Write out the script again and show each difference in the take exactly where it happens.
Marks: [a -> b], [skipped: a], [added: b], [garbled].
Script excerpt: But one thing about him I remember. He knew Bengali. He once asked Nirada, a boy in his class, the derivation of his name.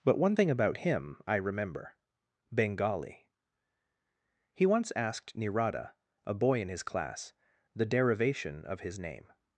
But one thing about him I remember. [skipped: He knew] Bengali. He once asked Nirada, a boy in his class, the derivation of his name.